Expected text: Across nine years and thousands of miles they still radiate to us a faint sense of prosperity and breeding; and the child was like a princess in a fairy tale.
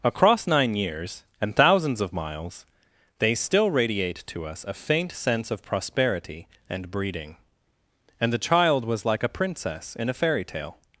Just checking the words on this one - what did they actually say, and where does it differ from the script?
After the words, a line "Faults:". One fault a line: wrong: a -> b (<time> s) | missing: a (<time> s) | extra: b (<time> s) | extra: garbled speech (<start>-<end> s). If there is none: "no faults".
Across nine years and thousands of miles they still radiate to us a faint sense of prosperity and breeding; and the child was like a princess in a fairy tale.
Faults:
no faults